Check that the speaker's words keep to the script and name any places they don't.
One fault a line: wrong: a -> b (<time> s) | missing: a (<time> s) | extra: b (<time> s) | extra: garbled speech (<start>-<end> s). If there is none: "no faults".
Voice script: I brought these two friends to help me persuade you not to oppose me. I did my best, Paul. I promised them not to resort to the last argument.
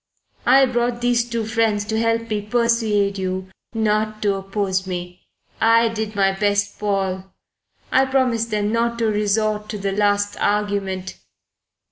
no faults